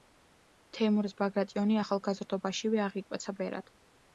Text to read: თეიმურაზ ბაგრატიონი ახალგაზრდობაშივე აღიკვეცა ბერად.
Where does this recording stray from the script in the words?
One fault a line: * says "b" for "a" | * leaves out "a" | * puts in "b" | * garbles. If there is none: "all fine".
all fine